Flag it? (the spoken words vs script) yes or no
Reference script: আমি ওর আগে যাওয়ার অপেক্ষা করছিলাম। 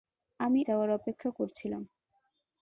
yes